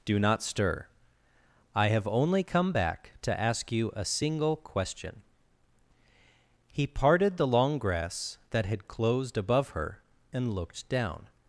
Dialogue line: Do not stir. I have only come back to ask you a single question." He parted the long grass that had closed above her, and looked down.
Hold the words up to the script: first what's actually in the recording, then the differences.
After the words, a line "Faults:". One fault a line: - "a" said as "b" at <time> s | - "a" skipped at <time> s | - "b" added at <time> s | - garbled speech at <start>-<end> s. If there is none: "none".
Do not stir. I have only come back to ask you a single question." He parted the long grass that had closed above her, and looked down.
Faults:
none